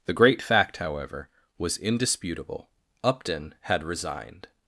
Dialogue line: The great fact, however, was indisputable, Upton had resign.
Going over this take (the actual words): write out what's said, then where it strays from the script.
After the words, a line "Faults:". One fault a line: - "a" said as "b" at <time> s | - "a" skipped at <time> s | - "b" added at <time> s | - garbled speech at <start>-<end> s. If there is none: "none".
The great fact, however, was indisputable, Upton had resigned.
Faults:
- "resign" said as "resigned" at 3.8 s